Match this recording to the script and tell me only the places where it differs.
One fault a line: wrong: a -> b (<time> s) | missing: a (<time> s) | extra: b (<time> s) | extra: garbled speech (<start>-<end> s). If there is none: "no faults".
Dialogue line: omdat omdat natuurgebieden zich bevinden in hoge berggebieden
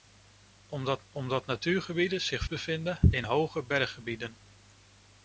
no faults